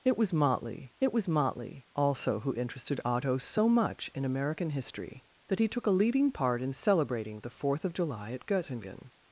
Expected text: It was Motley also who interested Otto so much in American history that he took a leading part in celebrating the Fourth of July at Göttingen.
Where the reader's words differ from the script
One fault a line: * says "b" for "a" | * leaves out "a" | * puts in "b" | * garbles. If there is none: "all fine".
* puts in "it was Motley"